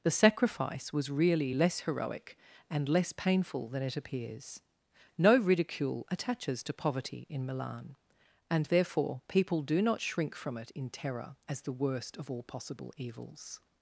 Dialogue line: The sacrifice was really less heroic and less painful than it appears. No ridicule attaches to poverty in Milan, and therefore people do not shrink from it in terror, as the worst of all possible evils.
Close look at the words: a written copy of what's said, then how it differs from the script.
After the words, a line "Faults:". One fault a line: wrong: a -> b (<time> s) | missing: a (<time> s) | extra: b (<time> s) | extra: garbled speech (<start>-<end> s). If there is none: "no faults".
The sacrifice was really less heroic and less painful than it appears. No ridicule attaches to poverty in Milan, and therefore people do not shrink from it in terror, as the worst of all possible evils.
Faults:
no faults